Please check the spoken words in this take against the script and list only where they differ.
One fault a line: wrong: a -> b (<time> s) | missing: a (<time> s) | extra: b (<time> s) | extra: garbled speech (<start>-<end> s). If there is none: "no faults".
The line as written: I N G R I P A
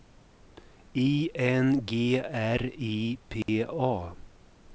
no faults